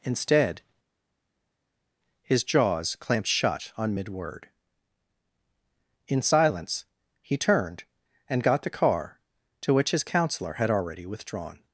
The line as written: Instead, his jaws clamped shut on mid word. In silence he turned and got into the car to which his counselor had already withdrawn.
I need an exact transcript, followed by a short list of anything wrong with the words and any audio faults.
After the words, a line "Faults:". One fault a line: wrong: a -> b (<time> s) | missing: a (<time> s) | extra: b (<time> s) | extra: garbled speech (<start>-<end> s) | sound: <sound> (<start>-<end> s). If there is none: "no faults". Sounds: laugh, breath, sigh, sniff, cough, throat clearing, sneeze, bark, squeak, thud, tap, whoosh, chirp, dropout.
Instead, his jaws clamped shut on mid word. In silence he turned and got the car to which his counselor had already withdrawn.
Faults:
missing: into (8.6 s)